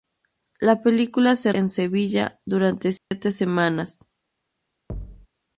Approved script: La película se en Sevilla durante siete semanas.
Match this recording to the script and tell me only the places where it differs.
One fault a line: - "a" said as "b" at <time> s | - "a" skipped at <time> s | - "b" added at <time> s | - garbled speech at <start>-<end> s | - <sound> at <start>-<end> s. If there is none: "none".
- dropout at 3.0-3.1 s
- thud at 4.9-5.3 s